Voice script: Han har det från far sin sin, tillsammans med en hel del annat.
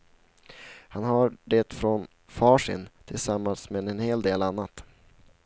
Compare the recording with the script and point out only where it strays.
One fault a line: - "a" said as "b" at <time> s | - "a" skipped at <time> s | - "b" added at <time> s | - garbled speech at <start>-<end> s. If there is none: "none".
- "sin" skipped at 2.9 s